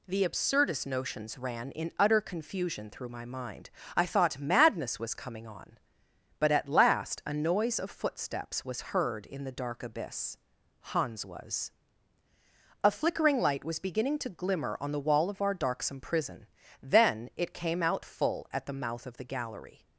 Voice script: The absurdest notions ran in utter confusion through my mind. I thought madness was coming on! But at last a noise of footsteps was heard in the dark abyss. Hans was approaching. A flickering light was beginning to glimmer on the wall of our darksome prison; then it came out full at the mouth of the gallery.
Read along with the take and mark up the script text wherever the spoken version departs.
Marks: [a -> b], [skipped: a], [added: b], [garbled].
The absurdest notions ran in utter confusion through my mind. I thought madness was coming on! But at last a noise of footsteps was heard in the dark abyss. Hans was [skipped: approaching.] A flickering light was beginning to glimmer on the wall of our darksome prison; then it came out full at the mouth of the gallery.